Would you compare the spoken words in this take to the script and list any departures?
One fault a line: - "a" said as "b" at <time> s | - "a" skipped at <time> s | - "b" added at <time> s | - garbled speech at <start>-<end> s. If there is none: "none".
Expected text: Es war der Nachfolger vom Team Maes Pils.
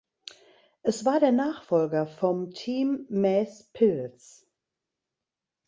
none